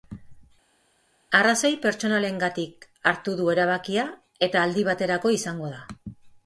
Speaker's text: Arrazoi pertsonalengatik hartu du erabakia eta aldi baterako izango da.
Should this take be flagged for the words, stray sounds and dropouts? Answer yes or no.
no